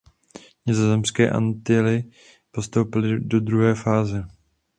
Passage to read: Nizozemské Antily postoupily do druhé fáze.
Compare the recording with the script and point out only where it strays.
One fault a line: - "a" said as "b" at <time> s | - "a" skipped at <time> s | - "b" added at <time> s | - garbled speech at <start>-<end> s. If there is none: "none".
none